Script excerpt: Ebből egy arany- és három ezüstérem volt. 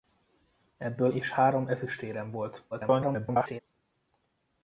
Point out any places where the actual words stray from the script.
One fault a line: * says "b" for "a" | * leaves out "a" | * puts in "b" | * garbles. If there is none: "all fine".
* leaves out "egy arany"
* garbles